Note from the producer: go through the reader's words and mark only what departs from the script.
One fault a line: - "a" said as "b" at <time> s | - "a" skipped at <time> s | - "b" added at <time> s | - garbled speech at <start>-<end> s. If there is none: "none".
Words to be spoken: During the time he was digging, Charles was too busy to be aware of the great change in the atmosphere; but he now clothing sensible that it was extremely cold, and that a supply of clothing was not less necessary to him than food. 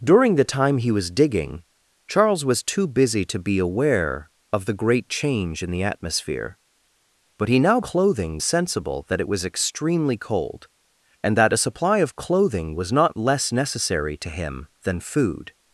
none